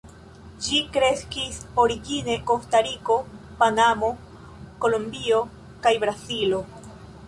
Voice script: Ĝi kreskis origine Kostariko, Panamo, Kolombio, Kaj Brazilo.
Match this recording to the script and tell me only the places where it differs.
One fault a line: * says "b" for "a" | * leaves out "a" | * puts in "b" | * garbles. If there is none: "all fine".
all fine